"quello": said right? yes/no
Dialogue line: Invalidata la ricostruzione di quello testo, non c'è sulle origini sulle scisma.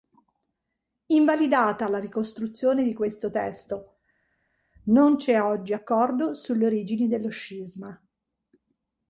no